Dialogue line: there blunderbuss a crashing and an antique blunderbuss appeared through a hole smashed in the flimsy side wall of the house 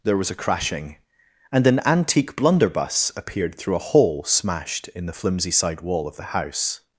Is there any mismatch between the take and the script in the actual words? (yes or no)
yes